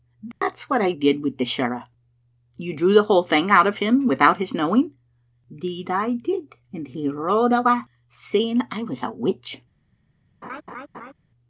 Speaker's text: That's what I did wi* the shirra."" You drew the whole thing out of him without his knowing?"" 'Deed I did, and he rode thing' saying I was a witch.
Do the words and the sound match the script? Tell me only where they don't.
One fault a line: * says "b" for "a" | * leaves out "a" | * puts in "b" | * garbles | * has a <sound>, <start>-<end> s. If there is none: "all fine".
* has a dropout, 0.3-0.4 s
* says "awa" for "thing"
* has a laugh, 10.4-11.1 s